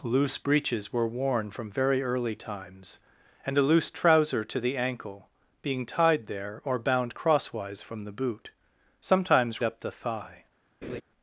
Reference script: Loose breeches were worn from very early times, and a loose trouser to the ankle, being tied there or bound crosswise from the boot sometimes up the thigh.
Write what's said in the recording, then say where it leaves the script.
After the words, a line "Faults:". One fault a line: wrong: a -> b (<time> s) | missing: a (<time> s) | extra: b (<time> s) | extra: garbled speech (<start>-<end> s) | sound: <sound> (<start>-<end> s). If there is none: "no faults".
Loose breeches were worn from very early times, and a loose trouser to the ankle, being tied there or bound crosswise from the boot sometimes up the thigh.
Faults:
sound: laugh (10.8-11.0 s)